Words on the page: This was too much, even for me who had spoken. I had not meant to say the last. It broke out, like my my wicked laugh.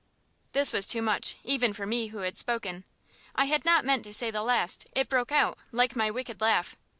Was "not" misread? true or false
false